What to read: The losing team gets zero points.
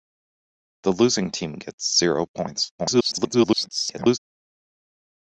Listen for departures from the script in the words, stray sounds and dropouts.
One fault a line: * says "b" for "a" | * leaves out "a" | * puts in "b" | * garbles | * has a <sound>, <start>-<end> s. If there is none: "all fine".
* garbles